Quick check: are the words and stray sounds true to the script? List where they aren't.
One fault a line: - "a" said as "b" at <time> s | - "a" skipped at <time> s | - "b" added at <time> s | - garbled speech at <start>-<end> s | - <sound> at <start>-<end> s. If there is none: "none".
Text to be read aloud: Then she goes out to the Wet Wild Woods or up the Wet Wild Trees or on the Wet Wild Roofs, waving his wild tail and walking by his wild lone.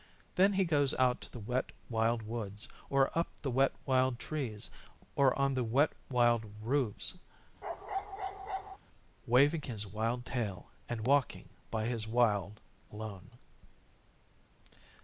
- "she" said as "he" at 0.5 s
- bark at 7.6-8.8 s